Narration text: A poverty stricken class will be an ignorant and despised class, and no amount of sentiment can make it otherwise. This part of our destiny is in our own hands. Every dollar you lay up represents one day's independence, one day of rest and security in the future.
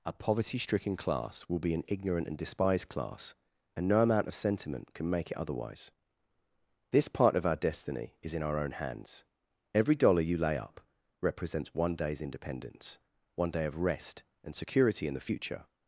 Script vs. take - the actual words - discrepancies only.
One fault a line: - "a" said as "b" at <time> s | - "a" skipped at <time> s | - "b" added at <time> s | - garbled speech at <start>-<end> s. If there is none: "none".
none